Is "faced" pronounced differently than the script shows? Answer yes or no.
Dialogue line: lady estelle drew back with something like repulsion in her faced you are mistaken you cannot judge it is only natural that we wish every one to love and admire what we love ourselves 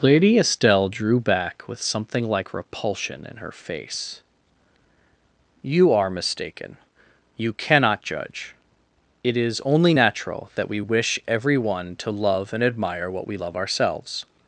yes